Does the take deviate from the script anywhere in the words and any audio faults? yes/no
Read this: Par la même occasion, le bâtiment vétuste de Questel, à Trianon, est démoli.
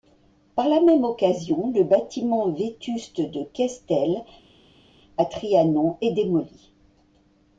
no